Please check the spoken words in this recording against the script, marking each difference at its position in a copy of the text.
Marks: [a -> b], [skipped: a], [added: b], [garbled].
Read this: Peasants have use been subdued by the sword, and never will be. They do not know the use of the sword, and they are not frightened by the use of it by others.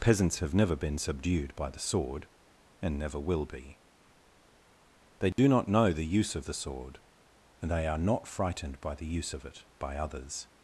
Peasants have [use -> never] been subdued by the sword, and never will be. They do not know the use of the sword, and they are not frightened by the use of it by others.